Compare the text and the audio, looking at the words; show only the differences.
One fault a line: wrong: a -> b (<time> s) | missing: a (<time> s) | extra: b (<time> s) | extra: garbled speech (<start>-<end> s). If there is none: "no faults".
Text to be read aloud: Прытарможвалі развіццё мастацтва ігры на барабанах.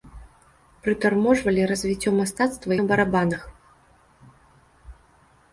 missing: ігры (2.7 s)